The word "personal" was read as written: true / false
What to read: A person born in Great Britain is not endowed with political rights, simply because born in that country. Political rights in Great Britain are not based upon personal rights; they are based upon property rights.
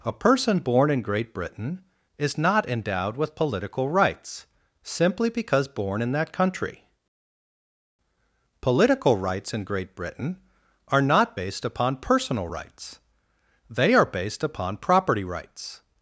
true